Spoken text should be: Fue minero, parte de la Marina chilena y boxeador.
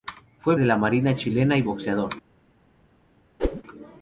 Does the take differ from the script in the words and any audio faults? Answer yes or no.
yes